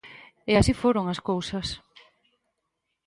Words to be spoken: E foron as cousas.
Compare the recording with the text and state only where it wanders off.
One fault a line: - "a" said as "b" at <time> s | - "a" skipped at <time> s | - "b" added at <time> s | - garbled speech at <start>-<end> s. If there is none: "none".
- "así" added at 0.6 s